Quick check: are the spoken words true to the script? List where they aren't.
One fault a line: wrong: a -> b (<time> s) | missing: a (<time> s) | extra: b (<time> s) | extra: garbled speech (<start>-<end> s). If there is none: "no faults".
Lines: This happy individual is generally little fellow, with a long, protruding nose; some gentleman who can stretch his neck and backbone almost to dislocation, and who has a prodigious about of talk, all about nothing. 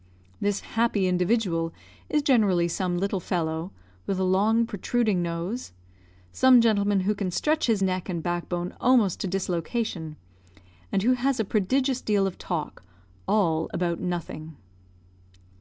extra: some (2.7 s)
wrong: about -> deal (12.0 s)